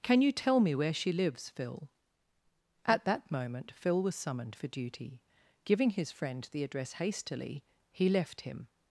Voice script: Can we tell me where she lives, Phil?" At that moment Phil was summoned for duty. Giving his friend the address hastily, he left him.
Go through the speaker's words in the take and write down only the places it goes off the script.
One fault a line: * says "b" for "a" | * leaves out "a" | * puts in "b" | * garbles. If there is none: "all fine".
* says "you" for "we"